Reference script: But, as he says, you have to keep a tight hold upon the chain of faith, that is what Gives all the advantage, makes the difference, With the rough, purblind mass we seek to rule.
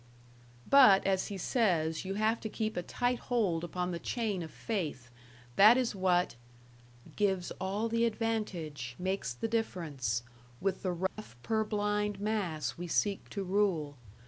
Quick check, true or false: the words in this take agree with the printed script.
true